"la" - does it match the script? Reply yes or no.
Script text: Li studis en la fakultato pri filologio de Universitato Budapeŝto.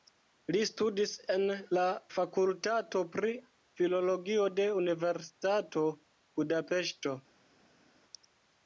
yes